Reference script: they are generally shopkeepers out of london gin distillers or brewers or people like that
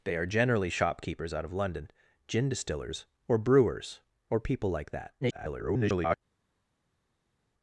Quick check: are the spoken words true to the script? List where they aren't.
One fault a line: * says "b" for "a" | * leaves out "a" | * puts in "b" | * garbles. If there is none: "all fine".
* garbles